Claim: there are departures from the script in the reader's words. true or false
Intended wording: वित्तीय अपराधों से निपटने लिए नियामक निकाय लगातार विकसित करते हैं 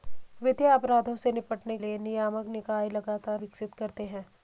false